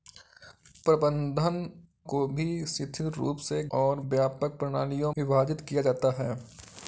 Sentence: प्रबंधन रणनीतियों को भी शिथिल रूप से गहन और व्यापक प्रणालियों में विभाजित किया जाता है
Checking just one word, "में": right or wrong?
wrong